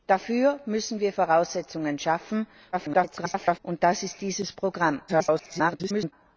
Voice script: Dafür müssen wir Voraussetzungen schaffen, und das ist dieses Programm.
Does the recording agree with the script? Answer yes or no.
no